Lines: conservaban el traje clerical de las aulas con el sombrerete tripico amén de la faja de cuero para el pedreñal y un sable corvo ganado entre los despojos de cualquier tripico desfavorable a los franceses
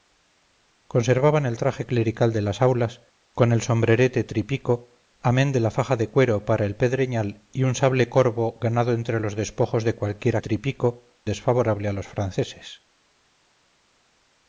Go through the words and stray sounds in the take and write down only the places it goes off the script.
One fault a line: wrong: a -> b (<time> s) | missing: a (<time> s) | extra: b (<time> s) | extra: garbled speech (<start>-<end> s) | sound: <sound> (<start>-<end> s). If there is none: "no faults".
no faults